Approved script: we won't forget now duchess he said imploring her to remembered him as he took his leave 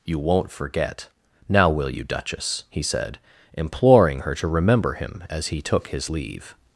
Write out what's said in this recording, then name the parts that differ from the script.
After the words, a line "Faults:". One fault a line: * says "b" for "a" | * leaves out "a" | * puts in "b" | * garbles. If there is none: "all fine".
you won't forget now will you duchess he said imploring her to remember him as he took his leave
Faults:
* says "you" for "we"
* puts in "will you"
* says "remember" for "remembered"